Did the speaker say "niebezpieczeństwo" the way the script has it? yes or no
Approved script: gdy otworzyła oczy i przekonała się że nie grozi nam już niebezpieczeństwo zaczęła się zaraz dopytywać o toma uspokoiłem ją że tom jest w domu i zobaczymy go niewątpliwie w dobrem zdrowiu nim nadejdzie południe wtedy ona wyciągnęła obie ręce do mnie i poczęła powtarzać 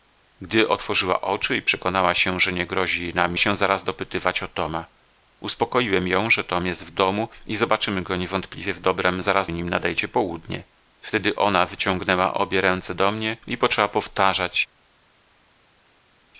no